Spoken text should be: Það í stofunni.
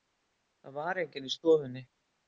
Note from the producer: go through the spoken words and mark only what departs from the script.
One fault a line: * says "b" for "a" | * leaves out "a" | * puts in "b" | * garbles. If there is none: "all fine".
* puts in "var enginn"